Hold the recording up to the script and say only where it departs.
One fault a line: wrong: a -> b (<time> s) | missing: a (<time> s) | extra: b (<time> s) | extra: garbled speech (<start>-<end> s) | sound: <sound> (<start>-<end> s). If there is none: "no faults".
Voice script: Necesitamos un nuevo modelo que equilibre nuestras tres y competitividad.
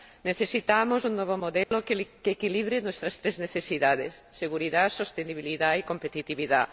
sound: dropout (1.6-1.7 s)
extra: necesidades seguridad sostenibilidad (3.5 s)